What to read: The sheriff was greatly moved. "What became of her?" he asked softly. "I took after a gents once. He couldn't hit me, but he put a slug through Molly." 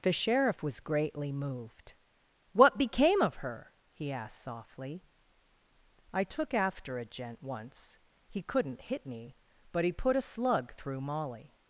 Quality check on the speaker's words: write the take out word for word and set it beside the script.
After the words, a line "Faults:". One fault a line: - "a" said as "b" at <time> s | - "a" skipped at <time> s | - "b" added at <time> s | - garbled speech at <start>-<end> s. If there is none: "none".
The sheriff was greatly moved. "What became of her?" he asked softly. "I took after a gent once. He couldn't hit me, but he put a slug through Molly."
Faults:
- "gents" said as "gent" at 7.0 s